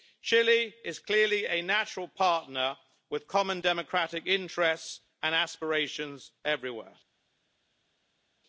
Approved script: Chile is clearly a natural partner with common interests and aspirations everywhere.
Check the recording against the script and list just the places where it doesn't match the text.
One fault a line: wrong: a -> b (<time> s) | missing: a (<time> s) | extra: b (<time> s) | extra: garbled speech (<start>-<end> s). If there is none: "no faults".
extra: democratic (3.6 s)